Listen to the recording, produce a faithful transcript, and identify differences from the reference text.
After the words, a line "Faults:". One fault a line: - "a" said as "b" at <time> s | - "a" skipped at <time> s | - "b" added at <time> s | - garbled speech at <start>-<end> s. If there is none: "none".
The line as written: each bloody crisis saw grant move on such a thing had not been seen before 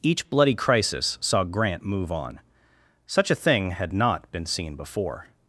each bloody crisis saw grant move on such a thing had not been seen before
Faults:
none